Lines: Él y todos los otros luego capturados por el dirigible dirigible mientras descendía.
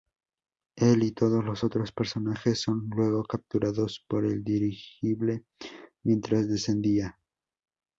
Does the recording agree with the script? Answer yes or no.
no